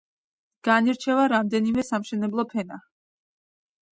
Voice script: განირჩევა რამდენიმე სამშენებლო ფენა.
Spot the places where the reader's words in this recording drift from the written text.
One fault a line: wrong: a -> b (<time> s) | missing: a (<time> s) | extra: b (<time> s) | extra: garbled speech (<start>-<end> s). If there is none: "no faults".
no faults